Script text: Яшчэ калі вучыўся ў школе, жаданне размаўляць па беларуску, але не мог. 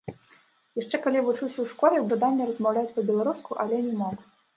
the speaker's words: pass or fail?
pass